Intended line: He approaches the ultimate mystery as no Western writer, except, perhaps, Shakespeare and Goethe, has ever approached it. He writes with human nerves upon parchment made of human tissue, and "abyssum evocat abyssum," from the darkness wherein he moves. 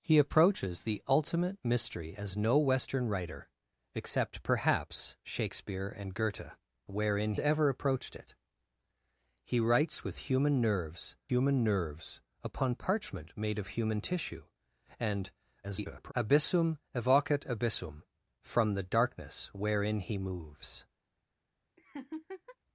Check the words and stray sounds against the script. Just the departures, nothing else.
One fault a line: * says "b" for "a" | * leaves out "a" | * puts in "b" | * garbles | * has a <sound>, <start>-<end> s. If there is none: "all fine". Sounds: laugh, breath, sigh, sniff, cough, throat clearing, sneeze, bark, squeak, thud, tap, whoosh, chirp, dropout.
* says "wherein" for "has"
* puts in "human nerves"
* garbles
* has a laugh, 21.8-22.6 s